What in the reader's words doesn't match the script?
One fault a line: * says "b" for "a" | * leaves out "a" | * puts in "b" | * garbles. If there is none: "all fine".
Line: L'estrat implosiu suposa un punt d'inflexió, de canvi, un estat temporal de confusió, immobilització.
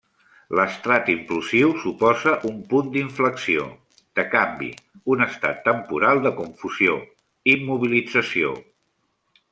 all fine